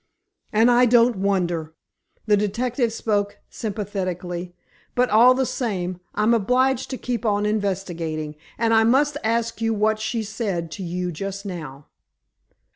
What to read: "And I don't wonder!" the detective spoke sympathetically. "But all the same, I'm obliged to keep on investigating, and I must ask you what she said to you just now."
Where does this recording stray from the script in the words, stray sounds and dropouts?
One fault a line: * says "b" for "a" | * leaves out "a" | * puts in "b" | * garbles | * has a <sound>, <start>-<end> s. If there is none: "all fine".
all fine